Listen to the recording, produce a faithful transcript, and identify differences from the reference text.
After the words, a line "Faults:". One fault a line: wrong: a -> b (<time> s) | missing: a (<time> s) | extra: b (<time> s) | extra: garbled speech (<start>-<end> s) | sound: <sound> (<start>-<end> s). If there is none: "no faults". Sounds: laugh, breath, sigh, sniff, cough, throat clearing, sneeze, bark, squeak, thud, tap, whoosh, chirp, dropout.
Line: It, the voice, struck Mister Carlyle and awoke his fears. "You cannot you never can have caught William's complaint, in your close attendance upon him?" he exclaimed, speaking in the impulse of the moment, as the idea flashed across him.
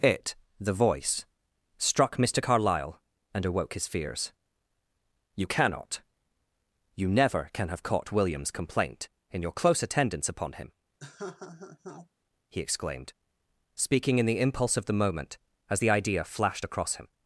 It, the voice, struck Mister Carlyle and awoke his fears. "You cannot you never can have caught William's complaint, in your close attendance upon him?" he exclaimed, speaking in the impulse of the moment, as the idea flashed across him.
Faults:
sound: laugh (11.0-12.1 s)